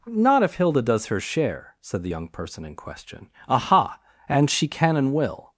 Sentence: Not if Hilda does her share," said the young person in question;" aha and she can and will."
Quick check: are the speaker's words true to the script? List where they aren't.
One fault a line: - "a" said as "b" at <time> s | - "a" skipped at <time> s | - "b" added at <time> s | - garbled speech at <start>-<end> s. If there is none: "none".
none